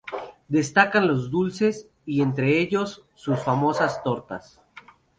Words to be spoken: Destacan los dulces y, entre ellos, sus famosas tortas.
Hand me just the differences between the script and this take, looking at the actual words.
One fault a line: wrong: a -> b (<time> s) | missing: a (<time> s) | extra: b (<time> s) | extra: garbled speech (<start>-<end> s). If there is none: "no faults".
no faults